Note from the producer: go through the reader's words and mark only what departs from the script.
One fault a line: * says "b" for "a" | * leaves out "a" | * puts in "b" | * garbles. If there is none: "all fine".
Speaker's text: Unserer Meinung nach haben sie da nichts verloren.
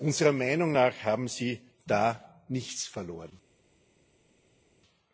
all fine